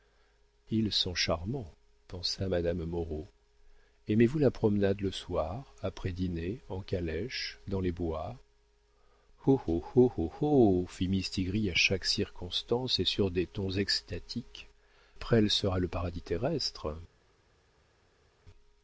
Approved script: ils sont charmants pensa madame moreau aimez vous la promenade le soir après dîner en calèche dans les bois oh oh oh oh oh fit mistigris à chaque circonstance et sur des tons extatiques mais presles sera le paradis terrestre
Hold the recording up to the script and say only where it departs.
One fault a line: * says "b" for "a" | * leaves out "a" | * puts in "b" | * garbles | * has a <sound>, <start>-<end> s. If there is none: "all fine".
* leaves out "mais"